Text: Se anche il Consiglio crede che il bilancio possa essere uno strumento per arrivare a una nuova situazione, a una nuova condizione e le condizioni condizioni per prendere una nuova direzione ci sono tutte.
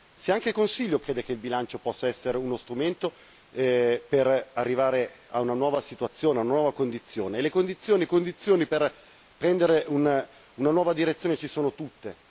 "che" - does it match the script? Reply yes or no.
yes